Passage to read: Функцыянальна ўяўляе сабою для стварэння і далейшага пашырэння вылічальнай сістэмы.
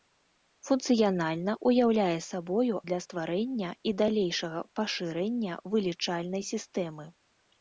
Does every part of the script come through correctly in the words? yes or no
yes